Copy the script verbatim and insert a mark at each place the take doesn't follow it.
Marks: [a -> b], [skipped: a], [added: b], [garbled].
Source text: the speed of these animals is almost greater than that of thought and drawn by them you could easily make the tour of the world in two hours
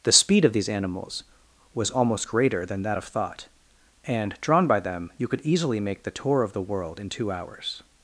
the speed of these animals [is -> was] almost greater than that of thought and drawn by them you could easily make the tour of the world in two hours